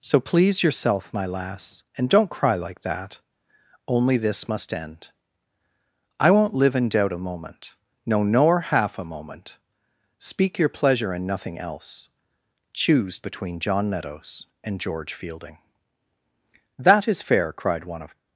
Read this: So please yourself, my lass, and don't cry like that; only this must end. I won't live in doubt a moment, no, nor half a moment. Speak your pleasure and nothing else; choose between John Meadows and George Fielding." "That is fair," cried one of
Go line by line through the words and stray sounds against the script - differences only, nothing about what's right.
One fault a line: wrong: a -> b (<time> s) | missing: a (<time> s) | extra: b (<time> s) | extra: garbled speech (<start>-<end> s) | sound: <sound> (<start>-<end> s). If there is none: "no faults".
no faults